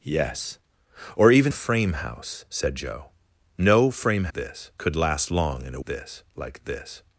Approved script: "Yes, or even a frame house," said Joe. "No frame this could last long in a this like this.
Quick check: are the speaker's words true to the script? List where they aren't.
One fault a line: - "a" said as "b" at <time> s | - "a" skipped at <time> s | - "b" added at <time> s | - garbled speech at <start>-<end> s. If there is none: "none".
none